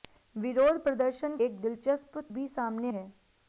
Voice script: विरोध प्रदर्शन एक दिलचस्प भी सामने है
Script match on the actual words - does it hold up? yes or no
yes